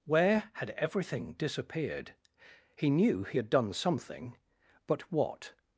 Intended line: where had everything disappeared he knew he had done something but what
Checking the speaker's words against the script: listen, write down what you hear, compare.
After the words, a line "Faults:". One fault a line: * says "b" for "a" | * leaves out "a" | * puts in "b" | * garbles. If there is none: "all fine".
where had everything disappeared he knew he had done something but what
Faults:
all fine